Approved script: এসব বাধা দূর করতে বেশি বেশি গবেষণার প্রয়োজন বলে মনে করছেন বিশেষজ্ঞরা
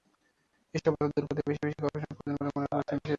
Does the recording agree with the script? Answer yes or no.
yes